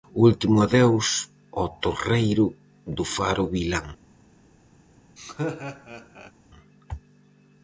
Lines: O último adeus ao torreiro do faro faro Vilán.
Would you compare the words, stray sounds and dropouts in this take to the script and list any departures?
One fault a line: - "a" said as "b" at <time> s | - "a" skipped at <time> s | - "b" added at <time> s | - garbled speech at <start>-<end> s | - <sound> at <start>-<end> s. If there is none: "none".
- "faro" skipped at 3.4 s
- laugh at 5.2-6.3 s